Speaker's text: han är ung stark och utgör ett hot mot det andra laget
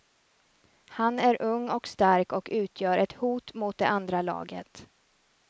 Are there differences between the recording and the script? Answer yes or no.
yes